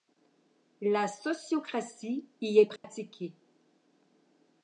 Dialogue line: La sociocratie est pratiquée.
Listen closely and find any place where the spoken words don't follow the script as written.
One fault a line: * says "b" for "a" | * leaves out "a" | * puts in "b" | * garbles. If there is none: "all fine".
* puts in "y"